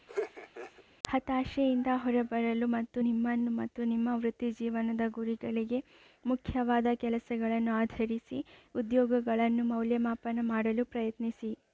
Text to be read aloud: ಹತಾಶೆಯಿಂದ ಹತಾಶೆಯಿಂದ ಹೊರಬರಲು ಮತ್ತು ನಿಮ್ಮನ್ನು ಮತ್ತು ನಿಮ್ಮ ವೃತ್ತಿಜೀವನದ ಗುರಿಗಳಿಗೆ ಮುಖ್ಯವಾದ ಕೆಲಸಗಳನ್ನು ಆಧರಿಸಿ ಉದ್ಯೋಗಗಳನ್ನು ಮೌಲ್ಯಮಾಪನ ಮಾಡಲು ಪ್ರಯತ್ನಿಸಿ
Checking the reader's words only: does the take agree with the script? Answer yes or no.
no